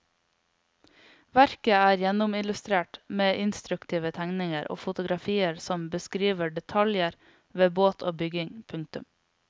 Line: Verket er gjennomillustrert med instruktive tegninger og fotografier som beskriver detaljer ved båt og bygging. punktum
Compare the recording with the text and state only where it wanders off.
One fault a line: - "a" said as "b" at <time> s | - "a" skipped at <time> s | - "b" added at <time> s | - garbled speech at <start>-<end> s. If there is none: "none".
none